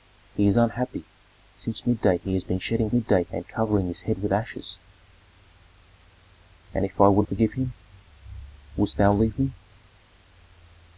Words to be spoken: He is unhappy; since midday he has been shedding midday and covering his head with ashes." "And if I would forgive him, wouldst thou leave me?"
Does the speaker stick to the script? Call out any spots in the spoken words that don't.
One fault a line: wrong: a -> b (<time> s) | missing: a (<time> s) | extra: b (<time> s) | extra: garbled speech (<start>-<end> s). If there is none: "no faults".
no faults